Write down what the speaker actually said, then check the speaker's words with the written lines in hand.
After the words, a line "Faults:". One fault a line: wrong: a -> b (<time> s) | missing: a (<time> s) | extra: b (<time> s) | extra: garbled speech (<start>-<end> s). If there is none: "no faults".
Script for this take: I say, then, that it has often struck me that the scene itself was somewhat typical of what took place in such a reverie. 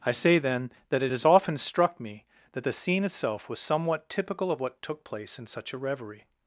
I say, then, that it has often struck me that the scene itself was somewhat typical of what took place in such a reverie.
Faults:
no faults